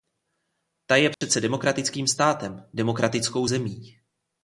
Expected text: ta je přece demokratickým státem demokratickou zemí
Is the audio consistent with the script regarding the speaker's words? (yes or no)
yes